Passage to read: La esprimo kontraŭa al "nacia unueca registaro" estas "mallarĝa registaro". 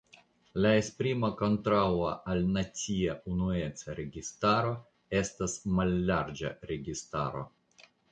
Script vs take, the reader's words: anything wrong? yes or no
no